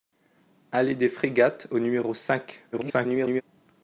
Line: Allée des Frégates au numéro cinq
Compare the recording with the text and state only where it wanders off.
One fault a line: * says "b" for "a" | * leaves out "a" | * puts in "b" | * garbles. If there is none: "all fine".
* garbles